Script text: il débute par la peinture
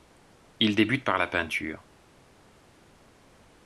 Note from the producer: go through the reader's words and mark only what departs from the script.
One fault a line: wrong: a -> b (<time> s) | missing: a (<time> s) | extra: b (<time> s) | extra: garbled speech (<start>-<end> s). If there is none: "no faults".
no faults